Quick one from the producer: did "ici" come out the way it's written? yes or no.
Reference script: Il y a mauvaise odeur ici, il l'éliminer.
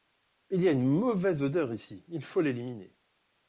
yes